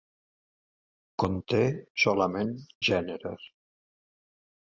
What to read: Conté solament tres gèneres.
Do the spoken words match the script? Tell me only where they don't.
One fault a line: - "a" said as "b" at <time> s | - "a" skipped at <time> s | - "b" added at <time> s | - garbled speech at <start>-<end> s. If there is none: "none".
- "tres" skipped at 2.6 s